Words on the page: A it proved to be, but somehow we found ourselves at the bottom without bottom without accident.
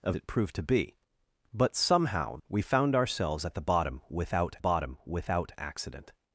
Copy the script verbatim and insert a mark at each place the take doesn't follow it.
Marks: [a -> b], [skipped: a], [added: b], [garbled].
A it proved to be, but somehow we found ourselves at the bottom without bottom without accident.